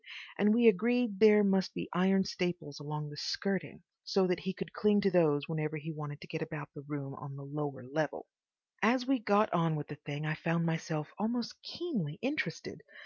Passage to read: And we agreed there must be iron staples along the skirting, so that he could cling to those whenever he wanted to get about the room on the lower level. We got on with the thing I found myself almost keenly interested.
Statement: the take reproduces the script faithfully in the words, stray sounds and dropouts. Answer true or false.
false